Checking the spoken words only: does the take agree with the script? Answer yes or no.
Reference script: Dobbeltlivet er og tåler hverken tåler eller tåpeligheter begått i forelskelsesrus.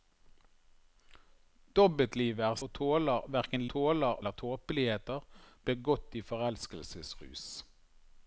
yes